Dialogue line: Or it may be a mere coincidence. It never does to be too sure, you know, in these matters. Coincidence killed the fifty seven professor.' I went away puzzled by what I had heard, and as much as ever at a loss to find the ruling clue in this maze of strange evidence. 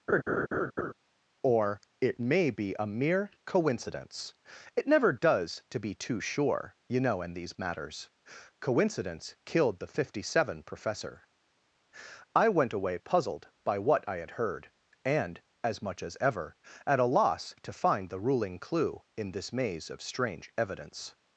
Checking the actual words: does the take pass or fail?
pass